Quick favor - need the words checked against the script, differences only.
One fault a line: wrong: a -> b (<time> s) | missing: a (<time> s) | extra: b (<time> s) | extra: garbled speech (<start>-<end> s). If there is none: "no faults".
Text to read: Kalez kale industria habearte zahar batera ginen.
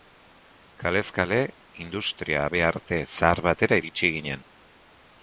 extra: iritsi (3.8 s)